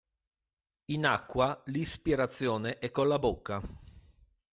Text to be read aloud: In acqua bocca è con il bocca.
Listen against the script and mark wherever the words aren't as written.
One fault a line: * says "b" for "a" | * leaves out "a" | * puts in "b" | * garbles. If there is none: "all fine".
* says "l'ispirazione" for "bocca"
* says "la" for "il"